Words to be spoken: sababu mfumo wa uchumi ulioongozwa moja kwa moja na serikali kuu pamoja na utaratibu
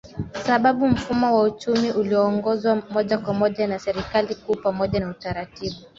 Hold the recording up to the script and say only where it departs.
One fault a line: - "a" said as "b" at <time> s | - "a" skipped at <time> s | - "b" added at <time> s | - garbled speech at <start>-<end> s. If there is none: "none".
none